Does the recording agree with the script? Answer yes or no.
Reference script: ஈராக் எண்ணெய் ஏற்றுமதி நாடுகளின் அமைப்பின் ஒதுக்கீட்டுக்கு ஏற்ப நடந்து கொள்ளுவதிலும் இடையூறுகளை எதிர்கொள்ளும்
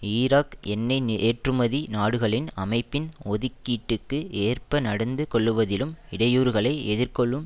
yes